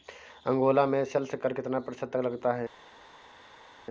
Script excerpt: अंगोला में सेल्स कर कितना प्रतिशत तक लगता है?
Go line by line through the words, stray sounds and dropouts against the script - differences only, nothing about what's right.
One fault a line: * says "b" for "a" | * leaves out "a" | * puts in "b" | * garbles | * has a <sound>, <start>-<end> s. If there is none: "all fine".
all fine